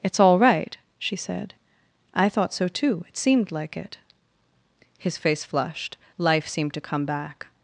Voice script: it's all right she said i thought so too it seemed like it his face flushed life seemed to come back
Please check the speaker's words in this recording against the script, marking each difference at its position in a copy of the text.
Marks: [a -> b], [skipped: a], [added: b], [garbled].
it's all right she said i thought so too it seemed like it his face flushed life seemed to come back